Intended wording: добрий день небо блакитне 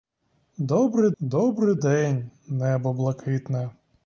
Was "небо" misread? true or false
false